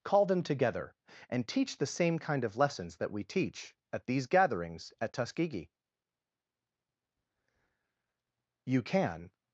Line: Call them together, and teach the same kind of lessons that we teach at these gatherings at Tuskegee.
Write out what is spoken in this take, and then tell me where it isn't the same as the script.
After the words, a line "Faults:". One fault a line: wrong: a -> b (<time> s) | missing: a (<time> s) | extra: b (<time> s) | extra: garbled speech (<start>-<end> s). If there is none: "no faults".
Call them together, and teach the same kind of lessons that we teach at these gatherings at Tuskegee. You can
Faults:
extra: You can (8.6 s)